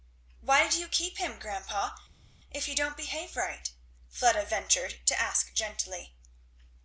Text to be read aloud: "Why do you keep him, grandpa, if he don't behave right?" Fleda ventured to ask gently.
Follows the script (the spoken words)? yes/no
yes